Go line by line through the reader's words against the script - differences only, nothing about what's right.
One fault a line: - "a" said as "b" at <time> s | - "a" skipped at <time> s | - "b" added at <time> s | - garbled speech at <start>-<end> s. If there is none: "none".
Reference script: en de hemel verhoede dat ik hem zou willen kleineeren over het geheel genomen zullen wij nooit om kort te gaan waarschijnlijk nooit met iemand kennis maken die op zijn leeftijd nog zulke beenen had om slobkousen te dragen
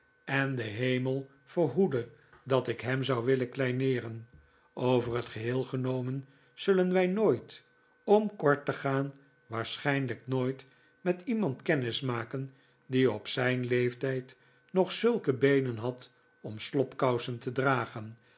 none